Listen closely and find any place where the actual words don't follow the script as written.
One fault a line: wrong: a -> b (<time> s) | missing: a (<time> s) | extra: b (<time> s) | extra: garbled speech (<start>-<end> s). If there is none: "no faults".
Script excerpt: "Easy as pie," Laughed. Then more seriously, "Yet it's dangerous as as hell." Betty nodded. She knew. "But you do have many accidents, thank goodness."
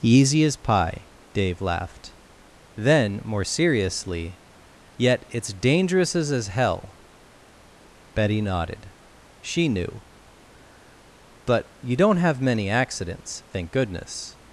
extra: Dave (1.3 s)
wrong: do -> don't (12.0 s)